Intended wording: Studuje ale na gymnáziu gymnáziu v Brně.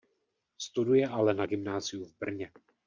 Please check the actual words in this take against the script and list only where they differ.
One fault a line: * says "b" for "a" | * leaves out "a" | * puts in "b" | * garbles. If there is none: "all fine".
* leaves out "gymnáziu"